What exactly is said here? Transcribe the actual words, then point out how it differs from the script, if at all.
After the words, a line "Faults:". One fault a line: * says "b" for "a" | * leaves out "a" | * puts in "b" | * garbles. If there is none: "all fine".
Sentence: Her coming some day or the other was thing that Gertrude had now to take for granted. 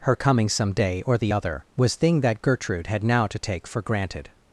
Her coming some day or the other was thing that Gertrude had now to take for granted.
Faults:
all fine